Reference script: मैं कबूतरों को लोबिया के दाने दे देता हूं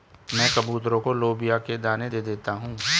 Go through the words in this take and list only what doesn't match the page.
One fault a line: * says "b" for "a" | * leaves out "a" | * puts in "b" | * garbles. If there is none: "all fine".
all fine